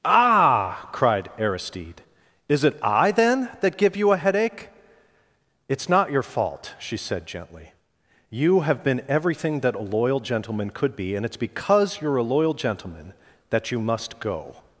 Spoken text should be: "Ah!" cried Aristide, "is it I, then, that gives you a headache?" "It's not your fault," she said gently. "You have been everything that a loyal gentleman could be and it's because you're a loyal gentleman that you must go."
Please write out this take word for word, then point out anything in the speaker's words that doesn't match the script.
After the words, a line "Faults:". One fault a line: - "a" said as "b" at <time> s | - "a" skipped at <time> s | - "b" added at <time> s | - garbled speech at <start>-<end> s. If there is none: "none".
"Ah!" cried Aristide, "is it I, then, that give you a headache?" "It's not your fault," she said gently. "You have been everything that a loyal gentleman could be and it's because you're a loyal gentleman that you must go."
Faults:
- "gives" said as "give" at 3.8 s